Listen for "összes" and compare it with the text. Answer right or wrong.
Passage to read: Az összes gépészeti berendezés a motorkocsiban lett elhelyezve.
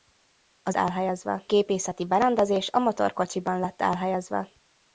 wrong